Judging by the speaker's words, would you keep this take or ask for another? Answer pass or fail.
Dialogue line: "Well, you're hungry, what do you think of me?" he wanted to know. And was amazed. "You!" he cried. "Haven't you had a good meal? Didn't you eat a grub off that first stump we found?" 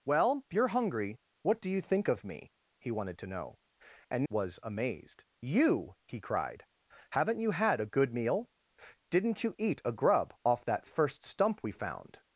pass